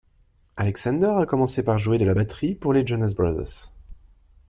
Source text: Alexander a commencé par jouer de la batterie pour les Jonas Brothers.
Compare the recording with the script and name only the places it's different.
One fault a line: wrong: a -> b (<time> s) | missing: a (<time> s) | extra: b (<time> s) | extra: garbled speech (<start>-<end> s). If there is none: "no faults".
no faults